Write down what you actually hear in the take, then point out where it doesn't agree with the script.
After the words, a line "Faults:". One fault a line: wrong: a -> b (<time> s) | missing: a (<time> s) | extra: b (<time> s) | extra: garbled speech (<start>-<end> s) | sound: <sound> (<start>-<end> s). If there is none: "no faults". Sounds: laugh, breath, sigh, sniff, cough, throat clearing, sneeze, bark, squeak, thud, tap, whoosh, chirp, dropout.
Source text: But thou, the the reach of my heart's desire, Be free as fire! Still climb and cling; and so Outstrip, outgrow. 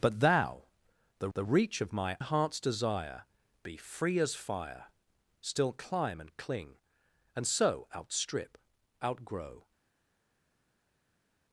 But thou, the the reach of my heart's desire, Be free as fire! Still climb and cling; and so Outstrip, outgrow.
Faults:
no faults